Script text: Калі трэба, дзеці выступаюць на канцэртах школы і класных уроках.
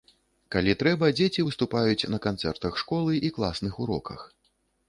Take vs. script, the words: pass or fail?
pass